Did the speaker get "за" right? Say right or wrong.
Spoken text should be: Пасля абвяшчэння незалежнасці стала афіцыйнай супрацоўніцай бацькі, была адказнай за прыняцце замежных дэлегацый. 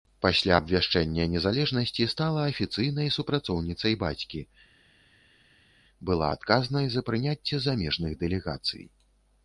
right